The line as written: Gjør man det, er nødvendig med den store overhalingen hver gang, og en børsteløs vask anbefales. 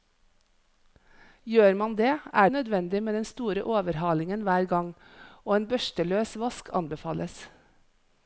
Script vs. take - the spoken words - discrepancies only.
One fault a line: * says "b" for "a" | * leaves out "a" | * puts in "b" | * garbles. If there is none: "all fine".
all fine